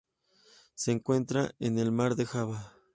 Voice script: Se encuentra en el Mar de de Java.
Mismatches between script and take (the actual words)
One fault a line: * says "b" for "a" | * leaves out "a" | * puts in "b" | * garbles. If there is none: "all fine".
* leaves out "de"